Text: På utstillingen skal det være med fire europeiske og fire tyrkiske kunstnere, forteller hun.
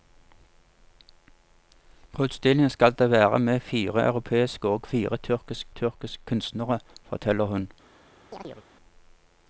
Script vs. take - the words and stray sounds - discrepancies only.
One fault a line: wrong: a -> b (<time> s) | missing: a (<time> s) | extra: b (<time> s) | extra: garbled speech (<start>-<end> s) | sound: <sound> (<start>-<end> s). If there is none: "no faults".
extra: tyrkiske (5.7 s)
sound: chirp (8.3-8.7 s)